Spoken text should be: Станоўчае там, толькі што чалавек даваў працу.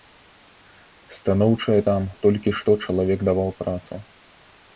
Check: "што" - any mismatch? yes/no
no